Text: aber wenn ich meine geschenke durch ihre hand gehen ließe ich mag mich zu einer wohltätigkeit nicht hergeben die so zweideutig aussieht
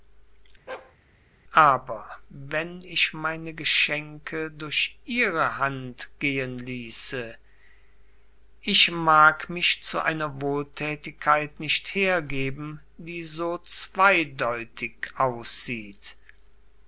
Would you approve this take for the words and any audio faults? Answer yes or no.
no